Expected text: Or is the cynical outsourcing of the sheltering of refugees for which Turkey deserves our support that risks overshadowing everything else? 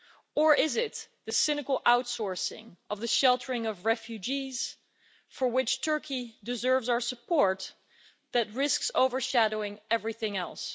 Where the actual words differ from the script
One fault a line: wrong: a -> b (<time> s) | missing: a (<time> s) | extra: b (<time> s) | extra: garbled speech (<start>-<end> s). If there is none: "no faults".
extra: it (0.8 s)